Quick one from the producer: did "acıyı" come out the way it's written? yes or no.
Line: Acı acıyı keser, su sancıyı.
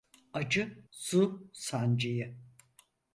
no